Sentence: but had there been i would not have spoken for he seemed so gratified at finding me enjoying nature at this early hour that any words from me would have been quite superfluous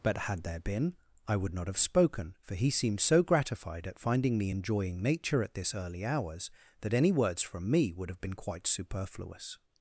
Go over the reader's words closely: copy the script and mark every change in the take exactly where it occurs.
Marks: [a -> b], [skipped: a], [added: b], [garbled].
but had there been i would not have spoken for he seemed so gratified at finding me enjoying nature at this early [hour -> hours] that any words from me would have been quite superfluous